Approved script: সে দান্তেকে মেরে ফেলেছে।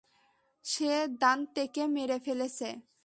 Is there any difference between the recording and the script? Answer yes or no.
no